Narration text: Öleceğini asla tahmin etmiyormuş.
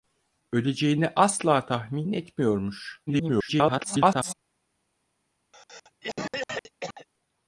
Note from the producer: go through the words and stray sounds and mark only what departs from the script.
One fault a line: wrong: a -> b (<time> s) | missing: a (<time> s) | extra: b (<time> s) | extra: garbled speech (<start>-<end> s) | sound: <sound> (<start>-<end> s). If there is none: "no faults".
extra: garbled speech (3.1-4.3 s)
sound: cough (5.5-7.1 s)